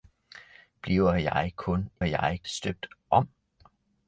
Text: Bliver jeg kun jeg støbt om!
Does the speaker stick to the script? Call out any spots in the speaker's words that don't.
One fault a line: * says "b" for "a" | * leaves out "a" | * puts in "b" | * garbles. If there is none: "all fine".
all fine